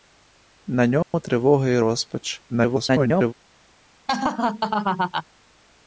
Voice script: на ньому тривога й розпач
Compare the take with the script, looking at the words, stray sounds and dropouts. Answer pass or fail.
fail